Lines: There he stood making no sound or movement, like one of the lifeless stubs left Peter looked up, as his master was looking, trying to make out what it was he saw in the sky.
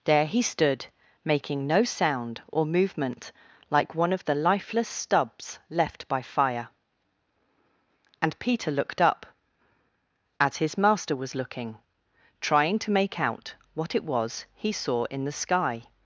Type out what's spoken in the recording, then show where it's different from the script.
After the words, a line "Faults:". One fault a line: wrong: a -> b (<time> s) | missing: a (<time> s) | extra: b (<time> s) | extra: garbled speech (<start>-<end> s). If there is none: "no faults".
There he stood making no sound or movement, like one of the lifeless stubs left by fire; and Peter looked up, as his master was looking, trying to make out what it was he saw in the sky.
Faults:
extra: by fire and (6.1 s)